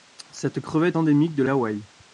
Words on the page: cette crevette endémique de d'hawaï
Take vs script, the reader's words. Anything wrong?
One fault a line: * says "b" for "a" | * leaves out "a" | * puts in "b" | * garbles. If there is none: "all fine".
all fine